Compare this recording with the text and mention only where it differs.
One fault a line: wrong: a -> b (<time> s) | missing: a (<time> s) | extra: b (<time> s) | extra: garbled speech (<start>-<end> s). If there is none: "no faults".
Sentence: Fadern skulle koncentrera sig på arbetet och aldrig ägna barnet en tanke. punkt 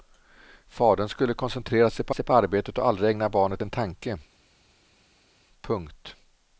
extra: sig på (2.1 s)